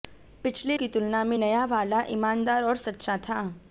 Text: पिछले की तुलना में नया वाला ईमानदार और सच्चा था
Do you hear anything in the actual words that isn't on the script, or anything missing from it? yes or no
no